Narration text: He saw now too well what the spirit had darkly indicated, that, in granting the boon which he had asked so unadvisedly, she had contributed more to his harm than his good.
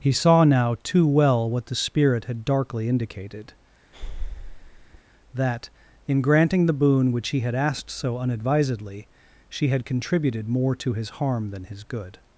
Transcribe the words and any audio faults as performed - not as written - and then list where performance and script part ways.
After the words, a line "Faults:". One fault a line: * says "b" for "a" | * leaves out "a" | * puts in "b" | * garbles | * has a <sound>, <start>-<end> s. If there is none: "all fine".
He saw now too well what the spirit had darkly indicated, that, in granting the boon which he had asked so unadvisedly, she had contributed more to his harm than his good.
Faults:
* has a breath, 3.9-5.0 s